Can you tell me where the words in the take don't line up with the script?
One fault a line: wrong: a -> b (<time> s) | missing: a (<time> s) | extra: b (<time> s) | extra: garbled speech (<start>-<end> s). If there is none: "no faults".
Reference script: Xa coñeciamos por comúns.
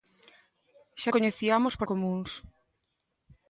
no faults